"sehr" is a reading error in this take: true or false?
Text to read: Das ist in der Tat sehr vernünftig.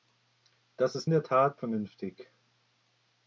true